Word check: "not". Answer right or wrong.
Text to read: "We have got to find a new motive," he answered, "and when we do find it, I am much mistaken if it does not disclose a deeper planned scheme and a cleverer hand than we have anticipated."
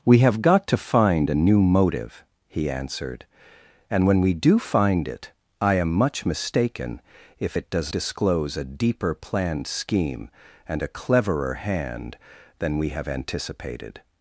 wrong